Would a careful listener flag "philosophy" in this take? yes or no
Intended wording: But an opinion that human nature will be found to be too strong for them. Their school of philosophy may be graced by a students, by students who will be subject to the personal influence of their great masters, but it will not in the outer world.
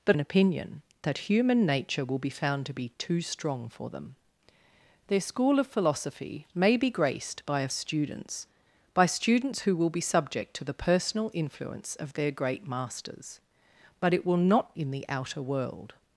no